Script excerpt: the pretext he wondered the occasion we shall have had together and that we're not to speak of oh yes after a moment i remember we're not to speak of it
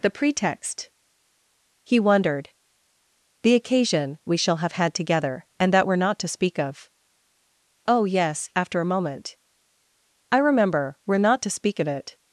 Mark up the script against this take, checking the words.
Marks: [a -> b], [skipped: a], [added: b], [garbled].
the pretext he wondered the occasion we shall have had together and that we're not to speak of oh yes after a moment i remember we're not to speak of it